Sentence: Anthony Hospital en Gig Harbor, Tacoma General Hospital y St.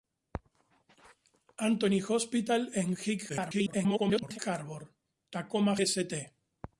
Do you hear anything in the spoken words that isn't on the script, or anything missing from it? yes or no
yes